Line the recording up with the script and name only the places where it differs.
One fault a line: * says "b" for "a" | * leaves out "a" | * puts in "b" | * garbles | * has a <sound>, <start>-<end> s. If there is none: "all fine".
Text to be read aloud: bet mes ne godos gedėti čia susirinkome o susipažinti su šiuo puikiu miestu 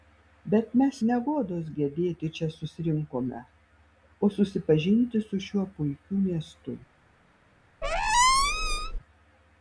* has a squeak, 7.8-9.0 s